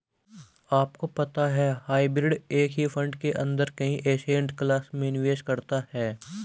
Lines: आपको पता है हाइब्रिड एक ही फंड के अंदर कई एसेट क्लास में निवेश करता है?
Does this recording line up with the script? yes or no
yes